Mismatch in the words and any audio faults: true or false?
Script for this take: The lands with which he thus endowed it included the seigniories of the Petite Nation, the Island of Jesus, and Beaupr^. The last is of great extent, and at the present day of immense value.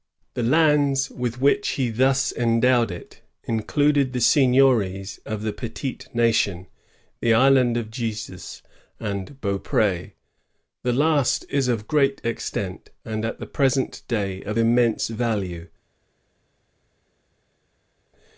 false